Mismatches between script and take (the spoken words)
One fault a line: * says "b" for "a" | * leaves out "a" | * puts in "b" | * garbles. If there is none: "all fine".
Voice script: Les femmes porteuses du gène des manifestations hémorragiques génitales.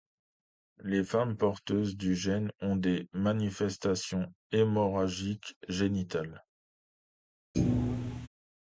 * puts in "ont"